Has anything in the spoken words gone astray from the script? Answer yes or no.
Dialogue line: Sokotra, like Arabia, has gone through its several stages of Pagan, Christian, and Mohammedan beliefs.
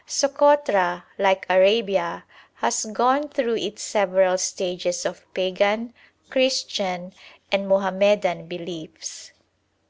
no